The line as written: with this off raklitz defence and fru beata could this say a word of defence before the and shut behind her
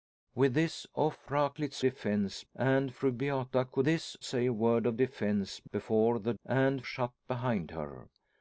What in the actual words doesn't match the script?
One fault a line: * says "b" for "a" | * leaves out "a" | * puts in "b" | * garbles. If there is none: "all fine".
all fine